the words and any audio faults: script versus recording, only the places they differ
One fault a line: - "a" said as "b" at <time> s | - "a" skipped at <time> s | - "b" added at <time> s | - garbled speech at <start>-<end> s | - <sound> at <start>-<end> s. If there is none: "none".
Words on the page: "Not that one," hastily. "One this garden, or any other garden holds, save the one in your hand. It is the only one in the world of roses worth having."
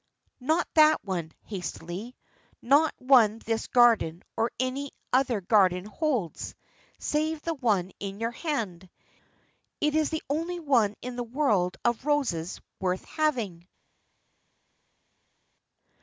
- "Not" added at 2.6 s